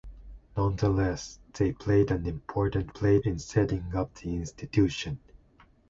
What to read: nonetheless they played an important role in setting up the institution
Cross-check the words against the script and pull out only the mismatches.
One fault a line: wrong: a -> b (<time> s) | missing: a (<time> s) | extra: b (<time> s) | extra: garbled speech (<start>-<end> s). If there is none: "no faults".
wrong: role -> played (2.9 s)